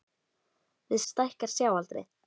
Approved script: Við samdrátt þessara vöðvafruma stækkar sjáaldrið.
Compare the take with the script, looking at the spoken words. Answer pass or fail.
fail